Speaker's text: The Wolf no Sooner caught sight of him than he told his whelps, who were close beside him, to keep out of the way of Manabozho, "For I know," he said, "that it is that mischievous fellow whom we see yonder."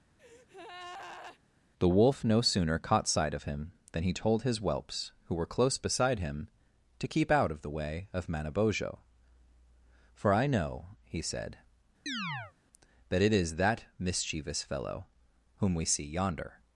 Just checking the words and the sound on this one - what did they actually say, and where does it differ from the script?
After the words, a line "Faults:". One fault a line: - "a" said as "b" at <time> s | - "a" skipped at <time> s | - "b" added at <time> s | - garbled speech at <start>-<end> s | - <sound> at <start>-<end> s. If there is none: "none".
The Wolf no Sooner caught sight of him than he told his whelps, who were close beside him, to keep out of the way of Manabozho, "For I know," he said, "that it is that mischievous fellow whom we see yonder."
Faults:
- breath at 0.2-1.4 s
- chirp at 12.1-12.5 s